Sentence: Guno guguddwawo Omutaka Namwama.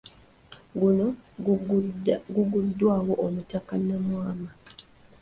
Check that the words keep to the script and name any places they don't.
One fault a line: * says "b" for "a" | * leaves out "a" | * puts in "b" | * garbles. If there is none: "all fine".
all fine